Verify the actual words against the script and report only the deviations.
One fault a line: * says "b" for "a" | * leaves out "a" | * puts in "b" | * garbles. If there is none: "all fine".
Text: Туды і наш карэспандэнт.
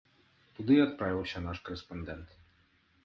* puts in "адправіўся"